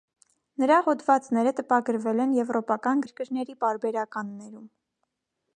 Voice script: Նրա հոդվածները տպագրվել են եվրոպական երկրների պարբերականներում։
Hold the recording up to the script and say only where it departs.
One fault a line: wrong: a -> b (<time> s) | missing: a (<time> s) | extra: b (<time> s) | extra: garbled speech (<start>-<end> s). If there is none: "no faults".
no faults